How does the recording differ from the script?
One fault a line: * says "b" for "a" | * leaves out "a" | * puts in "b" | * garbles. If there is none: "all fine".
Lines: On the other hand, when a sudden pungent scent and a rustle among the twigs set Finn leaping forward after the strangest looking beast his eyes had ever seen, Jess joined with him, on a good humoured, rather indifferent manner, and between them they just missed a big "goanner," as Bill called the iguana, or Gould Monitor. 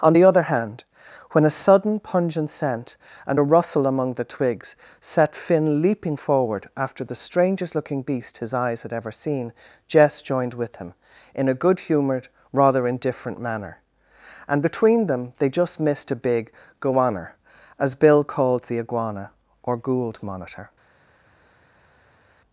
* says "in" for "on"